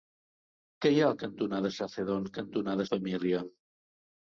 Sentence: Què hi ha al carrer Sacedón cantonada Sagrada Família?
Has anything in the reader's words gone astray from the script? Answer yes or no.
yes